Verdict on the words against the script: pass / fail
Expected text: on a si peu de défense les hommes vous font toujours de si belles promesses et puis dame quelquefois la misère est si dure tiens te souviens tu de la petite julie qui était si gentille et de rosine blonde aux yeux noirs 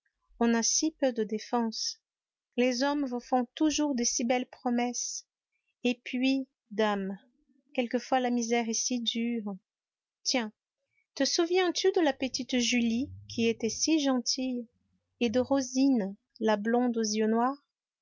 fail